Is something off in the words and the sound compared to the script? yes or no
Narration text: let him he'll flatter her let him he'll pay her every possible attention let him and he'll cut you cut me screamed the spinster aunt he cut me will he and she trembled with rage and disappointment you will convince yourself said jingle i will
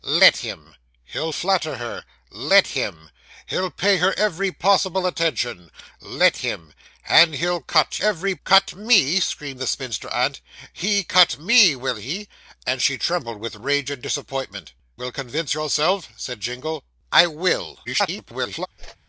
yes